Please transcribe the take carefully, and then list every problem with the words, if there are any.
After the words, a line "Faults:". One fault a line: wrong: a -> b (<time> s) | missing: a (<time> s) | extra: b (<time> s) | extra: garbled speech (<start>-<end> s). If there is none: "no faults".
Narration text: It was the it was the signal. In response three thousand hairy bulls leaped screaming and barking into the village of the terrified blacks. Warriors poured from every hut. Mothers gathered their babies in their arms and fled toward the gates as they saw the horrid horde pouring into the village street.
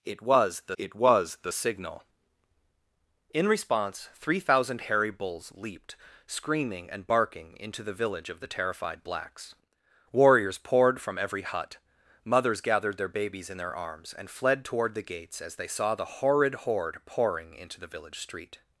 It was the it was the signal. In response three thousand hairy bulls leaped screaming and barking into the village of the terrified blacks. Warriors poured from every hut. Mothers gathered their babies in their arms and fled toward the gates as they saw the horrid horde pouring into the village street.
Faults:
no faults